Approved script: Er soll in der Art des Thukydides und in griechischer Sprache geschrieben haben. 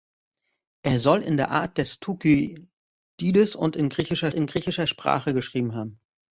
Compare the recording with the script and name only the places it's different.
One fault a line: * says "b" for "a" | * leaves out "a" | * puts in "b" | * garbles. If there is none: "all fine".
* puts in "in griechischer"